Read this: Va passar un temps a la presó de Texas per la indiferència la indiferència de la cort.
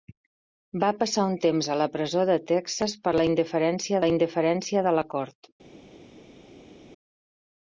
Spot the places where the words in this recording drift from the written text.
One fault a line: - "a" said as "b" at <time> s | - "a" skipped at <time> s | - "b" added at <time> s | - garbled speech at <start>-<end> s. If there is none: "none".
none